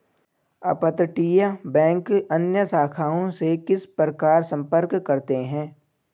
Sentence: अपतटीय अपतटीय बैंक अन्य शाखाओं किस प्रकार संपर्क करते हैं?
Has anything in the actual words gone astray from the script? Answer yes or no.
yes